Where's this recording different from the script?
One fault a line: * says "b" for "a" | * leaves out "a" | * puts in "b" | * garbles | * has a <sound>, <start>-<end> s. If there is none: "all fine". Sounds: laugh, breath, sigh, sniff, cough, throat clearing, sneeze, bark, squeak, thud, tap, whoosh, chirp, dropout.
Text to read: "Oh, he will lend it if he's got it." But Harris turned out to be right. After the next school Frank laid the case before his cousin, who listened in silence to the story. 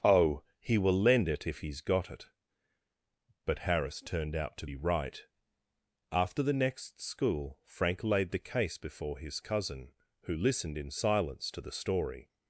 all fine